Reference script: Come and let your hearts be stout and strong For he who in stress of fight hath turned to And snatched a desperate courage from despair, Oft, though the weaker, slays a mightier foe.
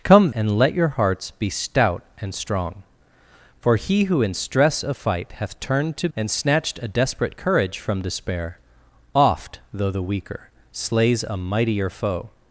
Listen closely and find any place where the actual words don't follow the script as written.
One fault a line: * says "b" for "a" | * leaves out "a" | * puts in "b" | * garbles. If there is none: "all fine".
all fine